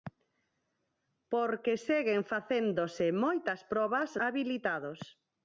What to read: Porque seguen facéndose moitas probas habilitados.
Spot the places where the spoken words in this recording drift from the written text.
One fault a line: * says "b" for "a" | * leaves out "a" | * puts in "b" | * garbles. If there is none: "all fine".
all fine